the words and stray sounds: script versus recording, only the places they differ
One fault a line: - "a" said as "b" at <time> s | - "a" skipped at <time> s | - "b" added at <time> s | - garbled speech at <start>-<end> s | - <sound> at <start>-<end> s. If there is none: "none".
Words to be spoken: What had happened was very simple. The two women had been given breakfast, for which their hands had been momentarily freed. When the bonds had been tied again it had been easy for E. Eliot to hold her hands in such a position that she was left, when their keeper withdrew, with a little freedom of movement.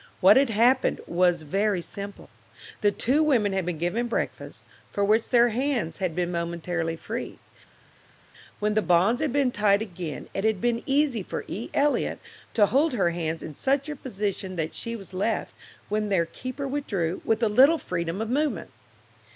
none